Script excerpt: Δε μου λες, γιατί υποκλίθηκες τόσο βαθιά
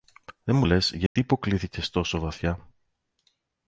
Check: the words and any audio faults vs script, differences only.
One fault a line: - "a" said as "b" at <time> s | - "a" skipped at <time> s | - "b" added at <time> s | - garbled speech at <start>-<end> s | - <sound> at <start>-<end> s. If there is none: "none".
- dropout at 1.1-1.2 s